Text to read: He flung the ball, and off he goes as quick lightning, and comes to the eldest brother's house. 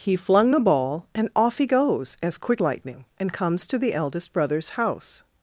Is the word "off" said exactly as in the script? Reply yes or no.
yes